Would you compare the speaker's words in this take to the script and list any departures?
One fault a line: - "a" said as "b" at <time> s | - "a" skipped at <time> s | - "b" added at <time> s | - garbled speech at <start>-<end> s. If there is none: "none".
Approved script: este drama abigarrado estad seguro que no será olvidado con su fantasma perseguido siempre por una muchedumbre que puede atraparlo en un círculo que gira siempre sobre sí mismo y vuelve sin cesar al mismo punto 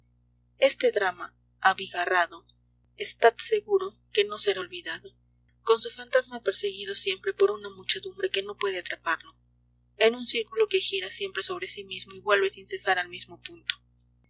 - "no" added at 8.4 s